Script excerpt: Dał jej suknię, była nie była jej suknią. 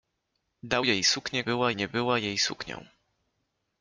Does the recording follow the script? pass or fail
pass